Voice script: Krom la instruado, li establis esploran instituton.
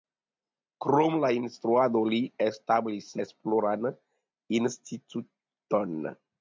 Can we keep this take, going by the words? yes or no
yes